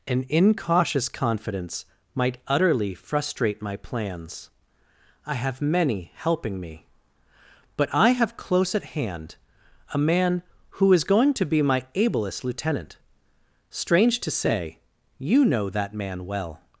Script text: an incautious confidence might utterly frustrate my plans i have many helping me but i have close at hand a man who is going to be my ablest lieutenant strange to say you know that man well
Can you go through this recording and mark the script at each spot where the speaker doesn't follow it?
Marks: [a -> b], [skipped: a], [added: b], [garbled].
an incautious confidence might utterly frustrate my plans i have many helping me but i have close at hand a man who is going to be my ablest lieutenant strange to say you know that man well